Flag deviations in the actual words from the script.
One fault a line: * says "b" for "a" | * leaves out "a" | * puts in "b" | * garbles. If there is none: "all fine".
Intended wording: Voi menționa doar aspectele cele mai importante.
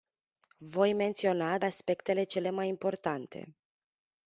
* leaves out "doar"